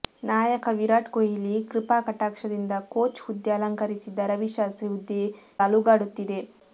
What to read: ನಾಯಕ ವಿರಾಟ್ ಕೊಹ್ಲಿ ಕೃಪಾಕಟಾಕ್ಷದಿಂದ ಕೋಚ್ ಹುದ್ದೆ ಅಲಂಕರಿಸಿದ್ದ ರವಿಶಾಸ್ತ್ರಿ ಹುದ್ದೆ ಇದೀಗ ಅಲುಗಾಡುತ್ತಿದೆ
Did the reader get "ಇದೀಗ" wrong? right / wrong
wrong